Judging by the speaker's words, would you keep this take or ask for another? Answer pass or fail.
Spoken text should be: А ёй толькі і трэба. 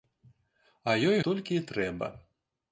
pass